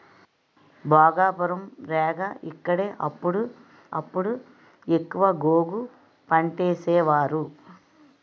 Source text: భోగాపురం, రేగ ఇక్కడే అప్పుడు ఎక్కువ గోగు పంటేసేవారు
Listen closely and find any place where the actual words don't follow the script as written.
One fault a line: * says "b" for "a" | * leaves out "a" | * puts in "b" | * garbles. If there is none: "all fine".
* puts in "అప్పుడు"